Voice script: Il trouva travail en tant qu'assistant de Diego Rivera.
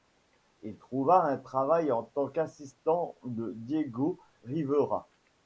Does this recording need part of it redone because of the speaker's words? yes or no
yes